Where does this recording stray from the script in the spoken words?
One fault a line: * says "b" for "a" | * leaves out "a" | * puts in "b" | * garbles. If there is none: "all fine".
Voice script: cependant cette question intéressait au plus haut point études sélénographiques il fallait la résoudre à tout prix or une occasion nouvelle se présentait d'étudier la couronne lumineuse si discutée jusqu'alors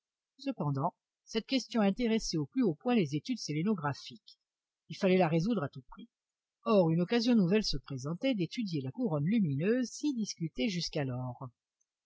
* puts in "les"